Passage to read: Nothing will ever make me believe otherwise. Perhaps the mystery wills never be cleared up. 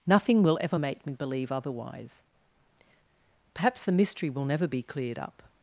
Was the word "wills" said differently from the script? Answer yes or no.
yes